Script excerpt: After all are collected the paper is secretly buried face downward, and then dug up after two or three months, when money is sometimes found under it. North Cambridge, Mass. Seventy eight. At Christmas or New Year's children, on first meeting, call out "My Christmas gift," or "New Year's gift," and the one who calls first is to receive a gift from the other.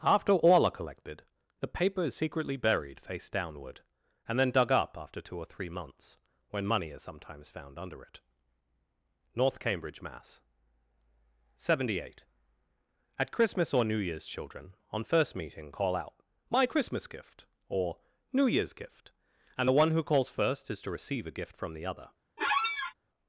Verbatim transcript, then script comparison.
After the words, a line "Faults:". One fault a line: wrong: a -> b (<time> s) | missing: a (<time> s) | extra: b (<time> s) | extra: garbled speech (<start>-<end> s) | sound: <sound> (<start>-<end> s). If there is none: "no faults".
After all are collected the paper is secretly buried face downward, and then dug up after two or three months, when money is sometimes found under it. North Cambridge, Mass. Seventy eight. At Christmas or New Year's children, on first meeting, call out "My Christmas gift," or "New Year's gift," and the one who calls first is to receive a gift from the other.
Faults:
sound: squeak (22.4-22.9 s)